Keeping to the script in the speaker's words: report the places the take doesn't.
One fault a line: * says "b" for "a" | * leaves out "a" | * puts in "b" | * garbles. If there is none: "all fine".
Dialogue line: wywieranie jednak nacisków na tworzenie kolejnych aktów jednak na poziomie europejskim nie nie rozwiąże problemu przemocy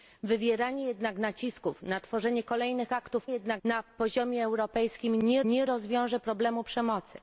all fine